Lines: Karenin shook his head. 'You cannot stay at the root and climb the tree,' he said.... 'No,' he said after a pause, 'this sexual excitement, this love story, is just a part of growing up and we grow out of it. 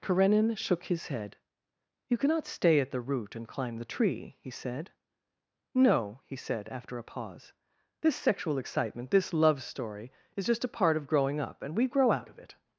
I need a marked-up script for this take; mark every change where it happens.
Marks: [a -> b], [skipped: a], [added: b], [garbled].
Karenin shook his head. 'You cannot stay at the root and climb the tree,' he said.... 'No,' he said after a pause, 'this sexual excitement, this love story, is just a part of growing up and we grow out of it.